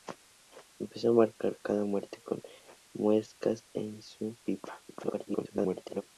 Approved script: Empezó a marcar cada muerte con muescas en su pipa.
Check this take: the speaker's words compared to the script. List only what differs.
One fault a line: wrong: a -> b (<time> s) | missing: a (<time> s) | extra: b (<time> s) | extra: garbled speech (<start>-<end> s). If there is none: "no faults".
extra: garbled speech (4.9-6.0 s)